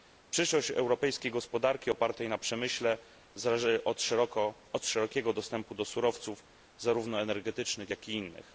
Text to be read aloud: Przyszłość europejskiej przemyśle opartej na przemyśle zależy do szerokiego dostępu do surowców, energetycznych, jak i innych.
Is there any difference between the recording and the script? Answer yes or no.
yes